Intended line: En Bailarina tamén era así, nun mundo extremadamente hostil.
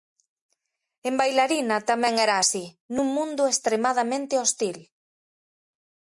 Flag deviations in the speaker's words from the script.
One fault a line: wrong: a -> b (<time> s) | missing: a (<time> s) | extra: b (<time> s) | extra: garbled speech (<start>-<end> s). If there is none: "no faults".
no faults